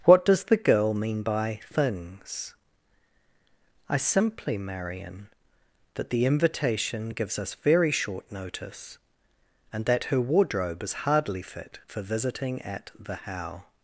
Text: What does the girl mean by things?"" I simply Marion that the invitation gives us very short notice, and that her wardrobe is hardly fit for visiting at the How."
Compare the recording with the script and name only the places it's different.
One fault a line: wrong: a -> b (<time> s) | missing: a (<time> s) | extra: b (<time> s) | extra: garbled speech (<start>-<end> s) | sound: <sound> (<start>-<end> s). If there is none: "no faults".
no faults